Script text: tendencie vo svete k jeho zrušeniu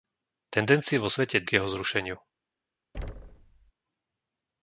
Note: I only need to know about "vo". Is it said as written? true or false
true